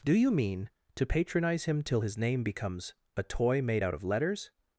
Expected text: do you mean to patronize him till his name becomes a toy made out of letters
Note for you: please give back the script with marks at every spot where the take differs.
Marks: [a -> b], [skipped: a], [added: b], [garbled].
do you mean to patronize him till his name becomes a toy made out of letters